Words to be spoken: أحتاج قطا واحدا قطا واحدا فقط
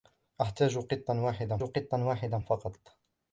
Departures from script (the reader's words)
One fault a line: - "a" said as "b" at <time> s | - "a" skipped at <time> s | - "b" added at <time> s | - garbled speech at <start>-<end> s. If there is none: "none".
none